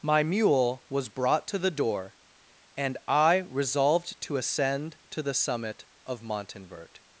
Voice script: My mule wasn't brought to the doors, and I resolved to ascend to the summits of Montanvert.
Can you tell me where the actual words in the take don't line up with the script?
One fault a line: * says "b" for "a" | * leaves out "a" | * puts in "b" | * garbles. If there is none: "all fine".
* says "was" for "wasn't"
* says "door" for "doors"
* says "summit" for "summits"